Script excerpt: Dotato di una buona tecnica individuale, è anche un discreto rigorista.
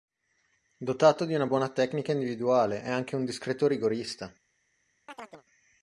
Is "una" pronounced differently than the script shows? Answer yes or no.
no